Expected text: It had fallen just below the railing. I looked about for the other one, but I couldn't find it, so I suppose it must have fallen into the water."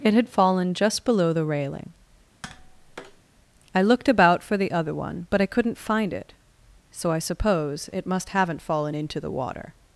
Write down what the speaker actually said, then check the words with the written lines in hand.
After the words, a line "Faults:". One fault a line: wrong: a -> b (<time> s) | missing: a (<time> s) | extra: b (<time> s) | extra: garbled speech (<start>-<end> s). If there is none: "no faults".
It had fallen just below the railing. I looked about for the other one, but I couldn't find it, so I suppose it must haven't fallen into the water."
Faults:
wrong: have -> haven't (8.3 s)